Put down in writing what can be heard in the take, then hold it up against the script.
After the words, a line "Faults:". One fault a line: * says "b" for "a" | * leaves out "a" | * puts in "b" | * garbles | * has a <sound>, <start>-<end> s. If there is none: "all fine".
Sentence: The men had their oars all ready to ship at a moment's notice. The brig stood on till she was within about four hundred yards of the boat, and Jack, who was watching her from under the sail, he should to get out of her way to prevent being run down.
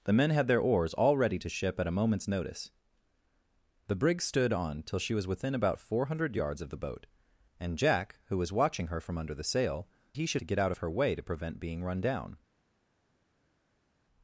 The men had their oars all ready to ship at a moment's notice. The brig stood on till she was within about four hundred yards of the boat, and Jack, who was watching her from under the sail, he should to get out of her way to prevent being run down.
Faults:
all fine